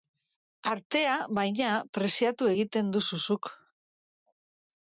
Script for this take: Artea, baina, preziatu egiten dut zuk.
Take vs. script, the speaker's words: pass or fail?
fail